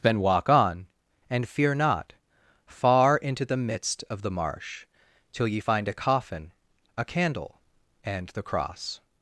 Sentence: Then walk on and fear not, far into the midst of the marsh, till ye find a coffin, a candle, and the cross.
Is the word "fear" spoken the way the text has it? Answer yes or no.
yes